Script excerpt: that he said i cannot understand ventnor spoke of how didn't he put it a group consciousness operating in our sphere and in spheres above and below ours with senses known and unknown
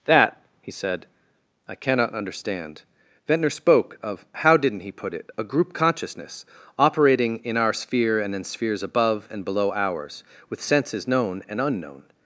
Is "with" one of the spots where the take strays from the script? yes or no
no